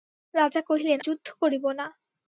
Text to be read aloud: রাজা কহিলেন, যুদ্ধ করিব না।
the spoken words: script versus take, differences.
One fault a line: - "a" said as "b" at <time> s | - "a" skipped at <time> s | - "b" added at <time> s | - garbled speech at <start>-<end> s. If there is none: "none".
none